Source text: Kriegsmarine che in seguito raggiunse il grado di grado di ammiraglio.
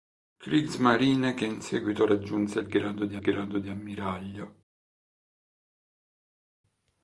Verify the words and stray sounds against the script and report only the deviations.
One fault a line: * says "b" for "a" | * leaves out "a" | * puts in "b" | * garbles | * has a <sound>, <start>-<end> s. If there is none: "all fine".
all fine